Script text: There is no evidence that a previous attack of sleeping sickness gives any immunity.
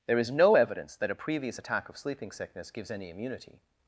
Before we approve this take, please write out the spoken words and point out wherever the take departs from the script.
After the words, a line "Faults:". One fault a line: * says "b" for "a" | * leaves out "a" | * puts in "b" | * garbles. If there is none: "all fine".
There is no evidence that a previous attack of sleeping sickness gives any immunity.
Faults:
all fine